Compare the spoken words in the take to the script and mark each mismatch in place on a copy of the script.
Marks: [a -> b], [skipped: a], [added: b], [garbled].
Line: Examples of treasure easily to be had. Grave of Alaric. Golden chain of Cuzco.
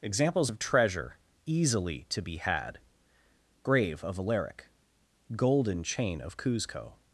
Examples of treasure easily to be had. Grave of Alaric. Golden chain of Cuzco.